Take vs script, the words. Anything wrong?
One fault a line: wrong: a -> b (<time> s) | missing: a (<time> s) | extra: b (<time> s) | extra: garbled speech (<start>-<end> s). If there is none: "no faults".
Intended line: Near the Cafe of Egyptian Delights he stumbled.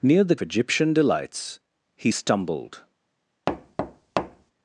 missing: Cafe of (0.3 s)